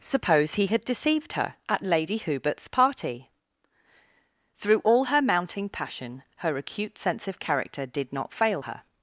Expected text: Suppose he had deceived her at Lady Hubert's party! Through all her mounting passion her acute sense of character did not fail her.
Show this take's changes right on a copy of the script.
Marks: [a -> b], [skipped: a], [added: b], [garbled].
Suppose he had deceived her at Lady Hubert's party! Through all her mounting passion her acute sense of character did not fail her.